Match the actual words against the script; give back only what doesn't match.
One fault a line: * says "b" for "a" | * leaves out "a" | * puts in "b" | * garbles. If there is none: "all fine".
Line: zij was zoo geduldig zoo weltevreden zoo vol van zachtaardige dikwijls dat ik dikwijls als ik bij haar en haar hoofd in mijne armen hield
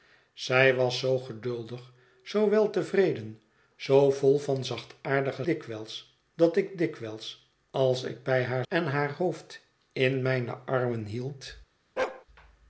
all fine